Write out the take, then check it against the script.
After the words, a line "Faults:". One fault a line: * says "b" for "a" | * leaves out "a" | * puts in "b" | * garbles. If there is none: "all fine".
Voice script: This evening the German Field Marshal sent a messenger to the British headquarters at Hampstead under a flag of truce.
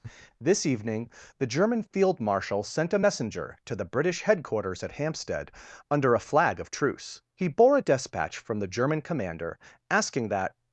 This evening the German Field Marshal sent a messenger to the British headquarters at Hampstead under a flag of truce. He bore a despatch from the German Commander asking that
Faults:
* puts in "He bore a despatch from the German Commander asking that"